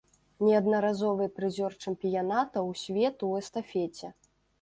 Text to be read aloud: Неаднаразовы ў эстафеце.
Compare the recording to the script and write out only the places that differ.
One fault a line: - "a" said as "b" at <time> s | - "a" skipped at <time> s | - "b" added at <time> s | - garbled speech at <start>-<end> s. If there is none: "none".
- "прызёр чэмпіянатаў свету" added at 1.4 s